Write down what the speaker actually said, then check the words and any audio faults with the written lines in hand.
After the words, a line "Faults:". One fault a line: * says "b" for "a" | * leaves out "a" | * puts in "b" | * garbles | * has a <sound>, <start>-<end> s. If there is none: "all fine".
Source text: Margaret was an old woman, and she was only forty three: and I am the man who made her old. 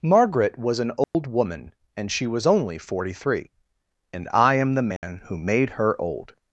Margaret was an old woman, and she was only forty three: and I am the man who made her old.
Faults:
* has a dropout, 1.0-1.1 s
* has a dropout, 5.0-5.0 s